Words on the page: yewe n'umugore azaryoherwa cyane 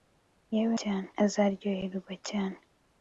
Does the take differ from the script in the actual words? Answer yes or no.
yes